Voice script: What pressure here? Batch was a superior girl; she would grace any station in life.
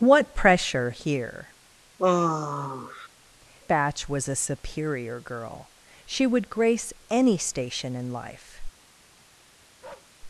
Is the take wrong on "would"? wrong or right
right